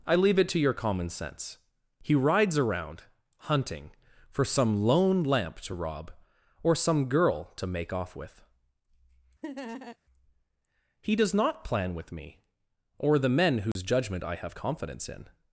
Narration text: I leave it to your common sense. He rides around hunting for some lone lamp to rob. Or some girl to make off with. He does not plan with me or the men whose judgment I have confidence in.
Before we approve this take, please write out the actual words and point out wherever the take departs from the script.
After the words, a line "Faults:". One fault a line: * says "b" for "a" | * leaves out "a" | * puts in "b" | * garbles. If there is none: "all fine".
I leave it to your common sense. He rides around hunting for some lone lamp to rob. Or some girl to make off with. He does not plan with me or the men whose judgment I have confidence in.
Faults:
all fine